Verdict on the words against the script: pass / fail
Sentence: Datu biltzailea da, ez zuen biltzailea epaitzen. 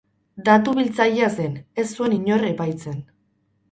fail